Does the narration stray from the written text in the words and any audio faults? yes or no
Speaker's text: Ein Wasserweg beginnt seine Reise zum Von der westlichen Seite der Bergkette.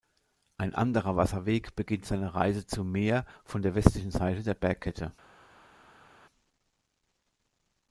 yes